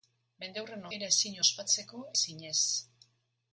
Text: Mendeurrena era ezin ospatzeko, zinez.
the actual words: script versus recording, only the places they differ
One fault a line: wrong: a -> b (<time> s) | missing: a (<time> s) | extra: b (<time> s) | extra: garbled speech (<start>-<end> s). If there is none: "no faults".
no faults